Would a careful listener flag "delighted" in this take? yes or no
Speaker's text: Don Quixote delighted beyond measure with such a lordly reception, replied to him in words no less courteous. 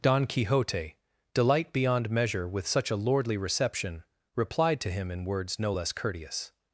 yes